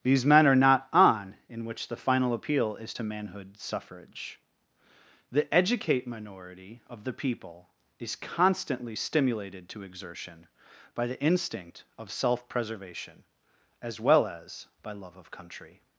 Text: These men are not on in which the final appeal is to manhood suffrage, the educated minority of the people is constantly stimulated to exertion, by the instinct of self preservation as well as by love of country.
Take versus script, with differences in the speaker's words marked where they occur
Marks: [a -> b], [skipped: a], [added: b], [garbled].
These men are not on in which the final appeal is to manhood suffrage, the [educated -> educate] minority of the people is constantly stimulated to exertion, by the instinct of self preservation as well as by love of country.